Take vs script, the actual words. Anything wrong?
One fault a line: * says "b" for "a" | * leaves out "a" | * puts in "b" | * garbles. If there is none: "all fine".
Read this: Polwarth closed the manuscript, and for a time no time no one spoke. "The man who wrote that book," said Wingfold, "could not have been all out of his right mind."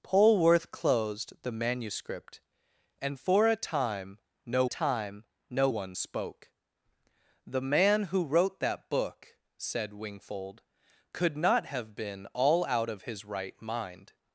all fine